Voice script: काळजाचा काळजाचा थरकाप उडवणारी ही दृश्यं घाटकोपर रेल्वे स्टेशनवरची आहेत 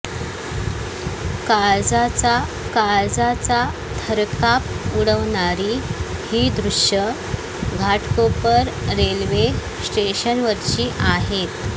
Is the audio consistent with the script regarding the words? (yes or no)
yes